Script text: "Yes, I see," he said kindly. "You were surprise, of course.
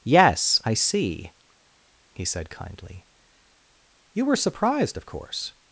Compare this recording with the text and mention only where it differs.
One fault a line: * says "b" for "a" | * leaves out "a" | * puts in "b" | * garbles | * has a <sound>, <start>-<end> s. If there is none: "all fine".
* says "surprised" for "surprise"